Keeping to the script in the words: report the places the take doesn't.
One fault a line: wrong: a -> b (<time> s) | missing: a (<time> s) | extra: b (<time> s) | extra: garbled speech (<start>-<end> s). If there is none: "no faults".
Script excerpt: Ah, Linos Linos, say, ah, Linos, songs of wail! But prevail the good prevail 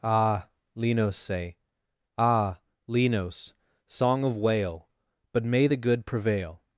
missing: Linos (1.1 s)
wrong: songs -> song (3.9 s)
wrong: prevail -> may (5.5 s)